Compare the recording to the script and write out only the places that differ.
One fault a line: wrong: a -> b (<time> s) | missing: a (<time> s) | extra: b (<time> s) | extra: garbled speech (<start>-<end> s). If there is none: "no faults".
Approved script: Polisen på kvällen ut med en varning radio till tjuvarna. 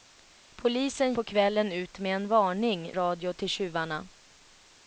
no faults